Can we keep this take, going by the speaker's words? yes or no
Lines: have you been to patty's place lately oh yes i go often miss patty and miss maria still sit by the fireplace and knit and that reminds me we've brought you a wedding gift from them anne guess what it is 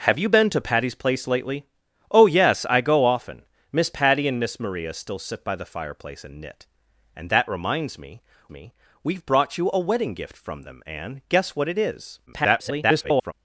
no